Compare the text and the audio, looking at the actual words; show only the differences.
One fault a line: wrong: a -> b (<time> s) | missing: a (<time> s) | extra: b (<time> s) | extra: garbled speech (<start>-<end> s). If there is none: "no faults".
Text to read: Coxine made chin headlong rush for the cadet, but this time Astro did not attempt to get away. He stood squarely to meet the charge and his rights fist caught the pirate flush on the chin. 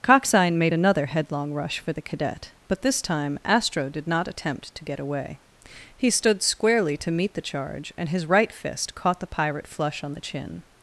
wrong: chin -> another (0.7 s)
wrong: rights -> right (8.2 s)